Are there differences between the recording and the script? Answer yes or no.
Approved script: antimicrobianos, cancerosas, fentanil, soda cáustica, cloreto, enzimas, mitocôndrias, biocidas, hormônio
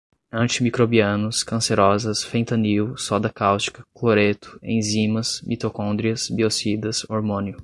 no